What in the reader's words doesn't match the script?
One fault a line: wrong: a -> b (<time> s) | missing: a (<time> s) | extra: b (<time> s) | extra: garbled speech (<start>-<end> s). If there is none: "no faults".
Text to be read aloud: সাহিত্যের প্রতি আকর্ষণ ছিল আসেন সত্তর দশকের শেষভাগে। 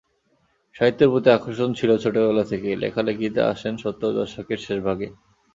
extra: ছোটবেলা থেকেই লেখালেখিতে (2.0 s)